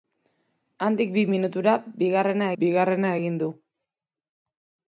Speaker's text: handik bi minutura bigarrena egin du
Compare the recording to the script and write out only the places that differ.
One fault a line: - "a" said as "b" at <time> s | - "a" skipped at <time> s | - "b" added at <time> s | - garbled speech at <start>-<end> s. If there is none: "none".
- "bigarrena" added at 2.6 s